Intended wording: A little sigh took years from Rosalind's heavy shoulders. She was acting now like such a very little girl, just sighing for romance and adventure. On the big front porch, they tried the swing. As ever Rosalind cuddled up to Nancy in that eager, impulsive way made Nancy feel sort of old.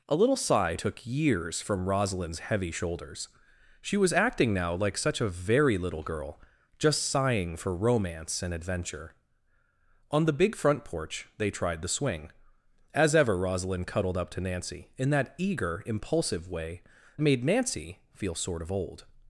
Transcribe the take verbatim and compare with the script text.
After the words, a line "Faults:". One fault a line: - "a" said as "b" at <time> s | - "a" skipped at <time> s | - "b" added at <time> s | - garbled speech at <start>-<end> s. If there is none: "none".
A little sigh took years from Rosalind's heavy shoulders. She was acting now like such a very little girl, just sighing for romance and adventure. On the big front porch, they tried the swing. As ever Rosalind cuddled up to Nancy in that eager, impulsive way made Nancy feel sort of old.
Faults:
none